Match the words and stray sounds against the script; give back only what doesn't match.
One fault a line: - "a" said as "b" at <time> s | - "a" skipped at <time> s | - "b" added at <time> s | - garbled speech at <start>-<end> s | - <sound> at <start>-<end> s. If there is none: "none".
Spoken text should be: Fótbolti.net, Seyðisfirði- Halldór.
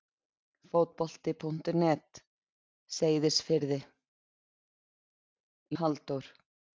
none